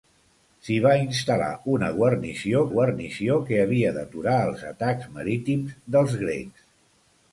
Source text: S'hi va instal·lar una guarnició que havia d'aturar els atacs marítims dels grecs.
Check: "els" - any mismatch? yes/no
no